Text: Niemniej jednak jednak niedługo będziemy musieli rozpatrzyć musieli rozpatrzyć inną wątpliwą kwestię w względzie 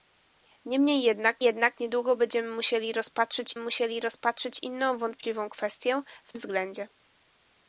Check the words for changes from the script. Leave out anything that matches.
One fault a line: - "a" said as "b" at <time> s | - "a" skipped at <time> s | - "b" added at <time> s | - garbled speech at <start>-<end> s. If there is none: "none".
none